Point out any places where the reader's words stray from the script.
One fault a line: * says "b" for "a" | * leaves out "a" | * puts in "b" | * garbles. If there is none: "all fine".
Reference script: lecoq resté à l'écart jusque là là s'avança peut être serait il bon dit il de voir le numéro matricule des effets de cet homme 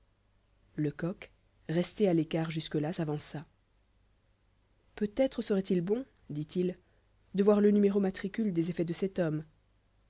* leaves out "là"